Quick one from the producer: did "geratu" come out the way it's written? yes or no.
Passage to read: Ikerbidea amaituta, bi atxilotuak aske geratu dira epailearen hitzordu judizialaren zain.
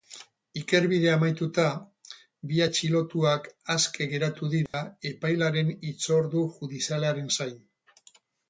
yes